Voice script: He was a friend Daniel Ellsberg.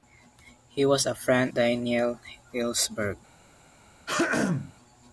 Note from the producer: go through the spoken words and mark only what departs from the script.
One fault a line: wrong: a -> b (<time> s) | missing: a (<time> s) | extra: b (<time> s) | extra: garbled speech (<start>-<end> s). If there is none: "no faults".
no faults